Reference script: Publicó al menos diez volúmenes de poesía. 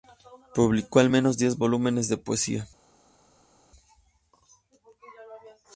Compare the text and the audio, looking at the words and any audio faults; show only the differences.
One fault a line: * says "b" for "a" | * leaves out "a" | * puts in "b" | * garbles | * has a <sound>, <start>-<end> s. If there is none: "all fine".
all fine